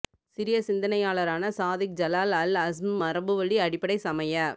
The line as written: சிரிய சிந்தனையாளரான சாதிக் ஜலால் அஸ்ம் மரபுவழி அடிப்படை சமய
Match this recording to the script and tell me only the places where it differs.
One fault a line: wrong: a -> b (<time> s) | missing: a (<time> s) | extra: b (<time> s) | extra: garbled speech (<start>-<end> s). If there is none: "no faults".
extra: அல் (2.3 s)